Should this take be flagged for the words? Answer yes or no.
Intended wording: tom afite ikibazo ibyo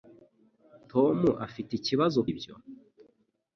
no